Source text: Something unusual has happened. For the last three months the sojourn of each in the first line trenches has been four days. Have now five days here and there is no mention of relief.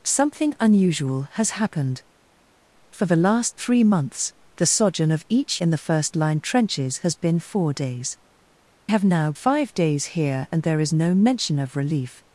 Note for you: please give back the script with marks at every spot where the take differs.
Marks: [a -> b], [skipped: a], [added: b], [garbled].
Something unusual has happened. For the last three months the sojourn of each in the first line trenches has been four days. Have now five days here and there is no mention of relief.